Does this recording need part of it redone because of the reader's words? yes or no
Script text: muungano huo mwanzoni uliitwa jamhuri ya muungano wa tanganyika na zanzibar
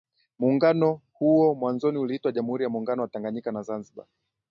no